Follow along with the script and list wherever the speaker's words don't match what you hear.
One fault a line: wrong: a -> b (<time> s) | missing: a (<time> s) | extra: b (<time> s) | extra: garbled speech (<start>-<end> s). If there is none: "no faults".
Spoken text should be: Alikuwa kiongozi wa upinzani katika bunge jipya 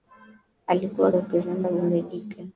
missing: kiongozi (1.1 s)
missing: katika (1.7 s)